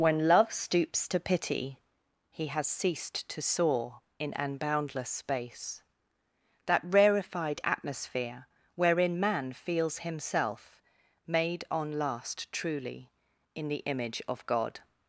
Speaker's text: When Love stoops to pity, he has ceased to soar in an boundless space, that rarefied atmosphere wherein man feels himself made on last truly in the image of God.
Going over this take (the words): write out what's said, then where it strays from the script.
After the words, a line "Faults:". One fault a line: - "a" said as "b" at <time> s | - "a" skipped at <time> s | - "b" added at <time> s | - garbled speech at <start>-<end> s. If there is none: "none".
When Love stoops to pity, he has ceased to soar in an boundless space, that rarefied atmosphere wherein man feels himself made on last truly in the image of God.
Faults:
none